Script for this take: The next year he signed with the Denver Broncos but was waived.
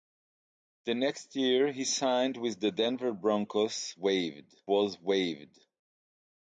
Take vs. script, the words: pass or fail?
fail